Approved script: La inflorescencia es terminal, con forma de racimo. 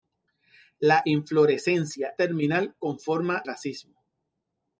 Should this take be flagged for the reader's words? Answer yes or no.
yes